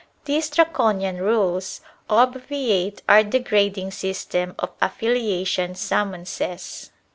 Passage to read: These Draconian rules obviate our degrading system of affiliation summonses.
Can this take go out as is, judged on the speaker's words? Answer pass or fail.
pass